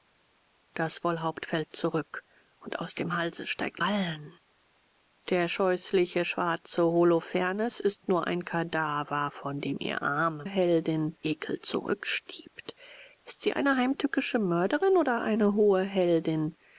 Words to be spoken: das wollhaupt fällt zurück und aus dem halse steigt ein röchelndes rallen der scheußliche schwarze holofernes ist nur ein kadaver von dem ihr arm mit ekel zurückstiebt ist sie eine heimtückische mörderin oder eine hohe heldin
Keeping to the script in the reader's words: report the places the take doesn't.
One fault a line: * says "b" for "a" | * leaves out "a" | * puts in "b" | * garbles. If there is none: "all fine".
* leaves out "ein röchelndes"
* says "heldin" for "mit"